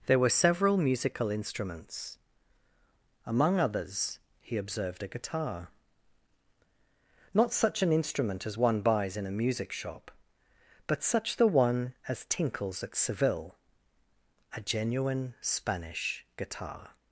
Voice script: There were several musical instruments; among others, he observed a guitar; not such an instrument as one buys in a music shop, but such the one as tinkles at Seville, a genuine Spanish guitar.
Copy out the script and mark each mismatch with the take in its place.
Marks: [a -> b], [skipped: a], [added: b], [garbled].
There were several musical instruments; among others, he observed a guitar; not such an instrument as one buys in a music shop, but such the one as tinkles at Seville, a genuine Spanish guitar.